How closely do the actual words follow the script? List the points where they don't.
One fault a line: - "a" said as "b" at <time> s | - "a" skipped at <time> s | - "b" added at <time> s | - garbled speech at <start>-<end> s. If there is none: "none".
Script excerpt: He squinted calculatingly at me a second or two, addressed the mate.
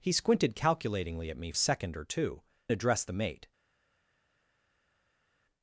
none